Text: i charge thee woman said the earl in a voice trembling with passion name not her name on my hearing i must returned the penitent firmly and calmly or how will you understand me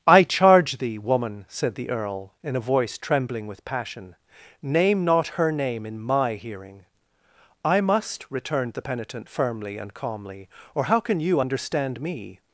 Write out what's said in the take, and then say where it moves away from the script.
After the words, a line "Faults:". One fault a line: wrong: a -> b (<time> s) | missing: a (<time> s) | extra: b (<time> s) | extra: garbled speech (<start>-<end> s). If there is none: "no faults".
i charge thee woman said the earl in a voice trembling with passion name not her name in my hearing i must returned the penitent firmly and calmly or how can you understand me
Faults:
wrong: on -> in (5.8 s)
wrong: will -> can (11.0 s)